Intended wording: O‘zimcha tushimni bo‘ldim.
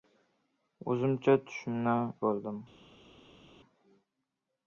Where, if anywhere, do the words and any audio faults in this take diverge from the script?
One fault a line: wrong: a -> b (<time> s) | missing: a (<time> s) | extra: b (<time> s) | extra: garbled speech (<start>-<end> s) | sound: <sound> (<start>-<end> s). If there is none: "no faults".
no faults